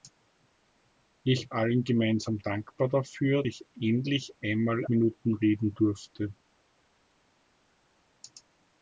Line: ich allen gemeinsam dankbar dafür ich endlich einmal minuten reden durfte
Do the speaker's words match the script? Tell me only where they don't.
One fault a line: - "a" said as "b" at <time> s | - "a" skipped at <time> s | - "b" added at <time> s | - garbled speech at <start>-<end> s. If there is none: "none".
none